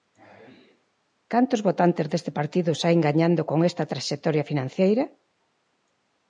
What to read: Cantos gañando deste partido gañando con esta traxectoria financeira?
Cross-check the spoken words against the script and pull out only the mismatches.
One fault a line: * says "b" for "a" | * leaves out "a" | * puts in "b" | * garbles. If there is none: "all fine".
* says "votantes" for "gañando"
* puts in "saen"